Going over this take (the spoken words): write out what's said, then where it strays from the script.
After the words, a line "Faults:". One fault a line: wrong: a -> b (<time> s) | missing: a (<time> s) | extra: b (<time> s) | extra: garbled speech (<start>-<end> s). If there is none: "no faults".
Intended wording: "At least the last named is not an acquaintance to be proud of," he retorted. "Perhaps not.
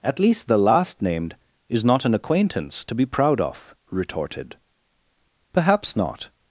"At least the last named is not an acquaintance to be proud of," retorted. "Perhaps not.
Faults:
missing: he (3.8 s)